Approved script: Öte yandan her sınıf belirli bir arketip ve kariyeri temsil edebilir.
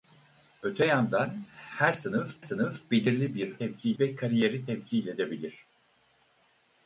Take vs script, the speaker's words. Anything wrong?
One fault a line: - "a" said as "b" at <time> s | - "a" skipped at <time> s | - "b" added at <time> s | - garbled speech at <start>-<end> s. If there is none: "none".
- "sınıf" added at 2.4 s
- "arketip" said as "temsil" at 3.6 s